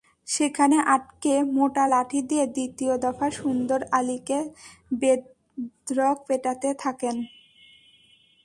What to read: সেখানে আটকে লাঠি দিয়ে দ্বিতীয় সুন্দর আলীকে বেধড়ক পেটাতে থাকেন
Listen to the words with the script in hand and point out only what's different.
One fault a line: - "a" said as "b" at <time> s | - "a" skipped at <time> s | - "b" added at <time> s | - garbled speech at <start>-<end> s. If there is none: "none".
- "মোটা" added at 1.6 s
- "দফা" added at 3.0 s